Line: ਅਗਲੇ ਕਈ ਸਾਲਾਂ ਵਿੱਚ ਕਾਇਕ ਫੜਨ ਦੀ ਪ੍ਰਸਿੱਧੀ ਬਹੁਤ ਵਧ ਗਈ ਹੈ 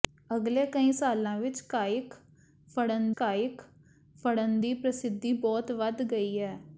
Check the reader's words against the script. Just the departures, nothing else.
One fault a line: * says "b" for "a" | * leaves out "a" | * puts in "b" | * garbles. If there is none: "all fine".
* puts in "ਕਾਇਕ ਫੜਨ"